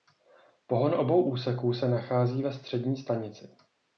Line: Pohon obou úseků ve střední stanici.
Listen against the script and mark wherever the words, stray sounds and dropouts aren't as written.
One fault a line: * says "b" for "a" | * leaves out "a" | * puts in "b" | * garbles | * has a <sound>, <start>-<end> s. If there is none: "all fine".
* puts in "se nachází"